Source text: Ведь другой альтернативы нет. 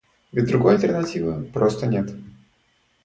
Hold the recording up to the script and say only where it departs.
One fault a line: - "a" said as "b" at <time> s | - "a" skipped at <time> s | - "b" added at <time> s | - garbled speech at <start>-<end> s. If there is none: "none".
- "просто" added at 1.5 s